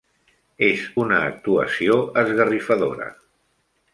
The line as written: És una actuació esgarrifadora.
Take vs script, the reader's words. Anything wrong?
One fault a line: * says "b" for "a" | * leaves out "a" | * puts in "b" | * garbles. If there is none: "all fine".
all fine